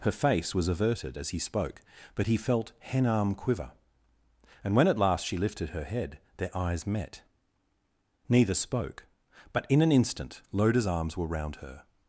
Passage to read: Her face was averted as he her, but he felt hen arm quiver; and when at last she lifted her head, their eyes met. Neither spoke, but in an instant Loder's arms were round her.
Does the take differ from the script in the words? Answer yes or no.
yes